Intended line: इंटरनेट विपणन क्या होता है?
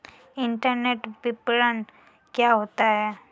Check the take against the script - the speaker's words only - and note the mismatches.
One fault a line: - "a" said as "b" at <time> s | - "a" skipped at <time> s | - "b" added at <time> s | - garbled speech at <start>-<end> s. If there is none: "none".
none